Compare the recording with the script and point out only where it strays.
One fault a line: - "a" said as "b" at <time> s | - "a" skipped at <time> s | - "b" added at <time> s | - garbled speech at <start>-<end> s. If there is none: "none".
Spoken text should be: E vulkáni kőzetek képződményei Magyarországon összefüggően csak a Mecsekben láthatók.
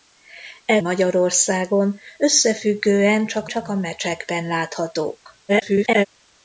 - "vulkáni kőzetek képződményei" skipped at 0.8 s
- "csak" added at 3.5 s
- garbled speech at 5.5-6.1 s